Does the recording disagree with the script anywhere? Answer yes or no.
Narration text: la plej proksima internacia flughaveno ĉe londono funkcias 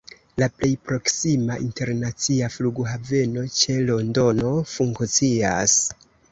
no